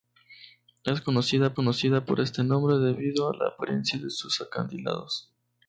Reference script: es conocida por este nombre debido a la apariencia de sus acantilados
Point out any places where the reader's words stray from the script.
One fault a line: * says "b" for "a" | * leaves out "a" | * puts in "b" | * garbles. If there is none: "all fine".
* puts in "conocida"